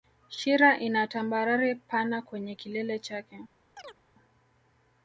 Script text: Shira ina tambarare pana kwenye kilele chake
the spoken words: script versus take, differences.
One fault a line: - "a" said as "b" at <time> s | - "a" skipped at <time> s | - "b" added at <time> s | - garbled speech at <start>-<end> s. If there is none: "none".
none